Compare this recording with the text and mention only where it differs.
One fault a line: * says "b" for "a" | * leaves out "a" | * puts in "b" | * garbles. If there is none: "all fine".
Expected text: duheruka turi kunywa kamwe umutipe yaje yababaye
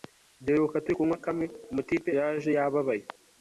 all fine